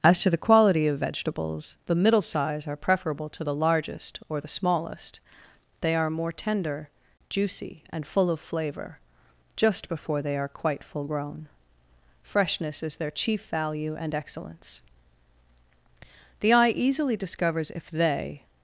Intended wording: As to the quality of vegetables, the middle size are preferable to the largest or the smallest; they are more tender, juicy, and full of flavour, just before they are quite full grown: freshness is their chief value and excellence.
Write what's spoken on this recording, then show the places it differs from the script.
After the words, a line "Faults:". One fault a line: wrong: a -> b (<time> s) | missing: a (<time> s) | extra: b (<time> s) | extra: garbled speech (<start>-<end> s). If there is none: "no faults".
As to the quality of vegetables, the middle size are preferable to the largest or the smallest; they are more tender, juicy, and full of flavour, just before they are quite full grown: freshness is their chief value and excellence. The eye easily discovers if they
Faults:
extra: The eye easily discovers if they (16.4 s)